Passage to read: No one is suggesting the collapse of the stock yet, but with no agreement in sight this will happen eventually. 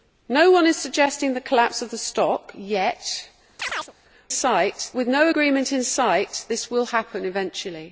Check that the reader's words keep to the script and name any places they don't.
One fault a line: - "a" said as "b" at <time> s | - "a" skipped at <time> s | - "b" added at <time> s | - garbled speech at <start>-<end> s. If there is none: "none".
- "but" said as "sight" at 4.3 s